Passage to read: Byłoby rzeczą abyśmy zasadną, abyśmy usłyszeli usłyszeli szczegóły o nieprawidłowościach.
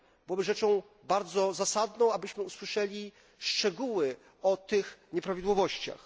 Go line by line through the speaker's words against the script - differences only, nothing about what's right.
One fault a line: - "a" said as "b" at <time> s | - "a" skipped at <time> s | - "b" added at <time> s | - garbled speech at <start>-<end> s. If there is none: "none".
- "abyśmy" said as "bardzo" at 1.0 s
- "usłyszeli" skipped at 3.1 s
- "tych" added at 4.6 s